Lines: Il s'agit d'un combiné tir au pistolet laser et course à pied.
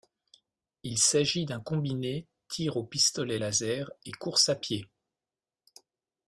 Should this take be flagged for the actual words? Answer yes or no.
no